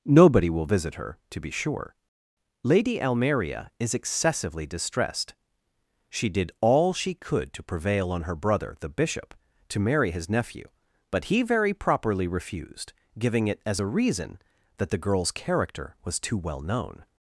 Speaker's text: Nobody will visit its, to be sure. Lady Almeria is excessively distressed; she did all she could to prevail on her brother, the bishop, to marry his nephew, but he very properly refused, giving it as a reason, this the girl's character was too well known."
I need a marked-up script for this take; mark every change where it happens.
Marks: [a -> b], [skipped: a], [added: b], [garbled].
Nobody will visit [its, -> her] to be sure. Lady Almeria is excessively distressed; she did all she could to prevail on her brother, the bishop, to marry his nephew, but he very properly refused, giving it as a reason, [this -> that] the girl's character was too well known."